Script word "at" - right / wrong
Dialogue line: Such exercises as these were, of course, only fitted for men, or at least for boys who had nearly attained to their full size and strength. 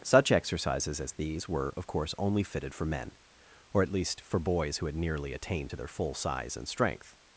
right